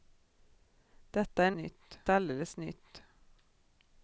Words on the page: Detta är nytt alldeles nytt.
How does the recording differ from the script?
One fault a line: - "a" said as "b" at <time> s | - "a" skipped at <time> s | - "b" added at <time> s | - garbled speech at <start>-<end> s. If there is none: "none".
none